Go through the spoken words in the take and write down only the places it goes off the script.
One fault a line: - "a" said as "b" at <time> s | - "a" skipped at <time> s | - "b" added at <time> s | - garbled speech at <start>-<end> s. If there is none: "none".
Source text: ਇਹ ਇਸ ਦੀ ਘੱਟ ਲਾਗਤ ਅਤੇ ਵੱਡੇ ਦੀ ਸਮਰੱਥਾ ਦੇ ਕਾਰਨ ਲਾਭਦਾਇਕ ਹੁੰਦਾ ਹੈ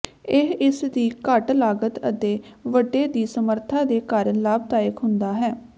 none